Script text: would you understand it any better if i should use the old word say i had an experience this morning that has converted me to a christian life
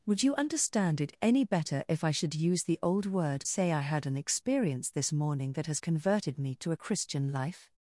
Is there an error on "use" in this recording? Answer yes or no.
no